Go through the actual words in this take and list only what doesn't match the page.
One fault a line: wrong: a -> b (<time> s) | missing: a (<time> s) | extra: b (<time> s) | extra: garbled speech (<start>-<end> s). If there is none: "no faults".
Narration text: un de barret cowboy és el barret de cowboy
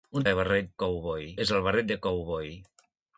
no faults